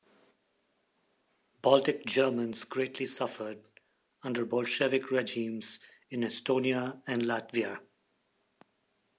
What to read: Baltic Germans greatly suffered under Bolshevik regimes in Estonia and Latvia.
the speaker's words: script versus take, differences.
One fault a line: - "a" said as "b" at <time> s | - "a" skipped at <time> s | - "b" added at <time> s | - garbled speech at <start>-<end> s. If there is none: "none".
none